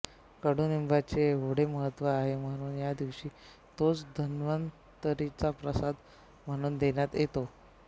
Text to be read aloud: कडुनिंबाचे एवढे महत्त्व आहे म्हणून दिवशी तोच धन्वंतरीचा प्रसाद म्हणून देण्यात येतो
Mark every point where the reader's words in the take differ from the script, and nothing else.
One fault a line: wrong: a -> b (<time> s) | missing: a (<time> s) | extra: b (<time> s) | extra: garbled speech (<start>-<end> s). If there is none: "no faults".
extra: या (2.8 s)